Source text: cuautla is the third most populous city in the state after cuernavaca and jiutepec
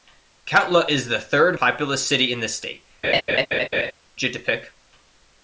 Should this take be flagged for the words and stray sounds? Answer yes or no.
yes